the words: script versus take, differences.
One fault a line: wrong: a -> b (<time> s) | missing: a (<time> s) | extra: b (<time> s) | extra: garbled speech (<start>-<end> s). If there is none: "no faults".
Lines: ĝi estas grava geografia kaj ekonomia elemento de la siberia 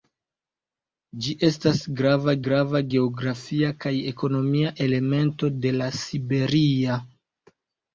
extra: grava (2.5 s)